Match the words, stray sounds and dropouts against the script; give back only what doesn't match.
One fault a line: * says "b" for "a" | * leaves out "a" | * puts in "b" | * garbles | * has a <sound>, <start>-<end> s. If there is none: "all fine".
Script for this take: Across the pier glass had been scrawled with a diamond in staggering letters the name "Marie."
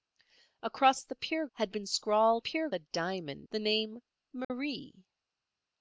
* leaves out "glass"
* says "pier" for "with"
* leaves out "in staggering letters"
* has a dropout, 4.4-4.5 s